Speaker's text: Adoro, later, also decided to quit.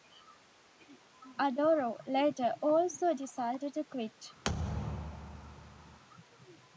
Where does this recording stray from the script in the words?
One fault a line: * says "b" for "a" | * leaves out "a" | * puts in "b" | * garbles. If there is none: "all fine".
all fine